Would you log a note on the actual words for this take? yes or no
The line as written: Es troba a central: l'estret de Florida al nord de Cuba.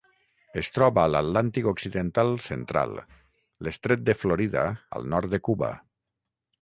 yes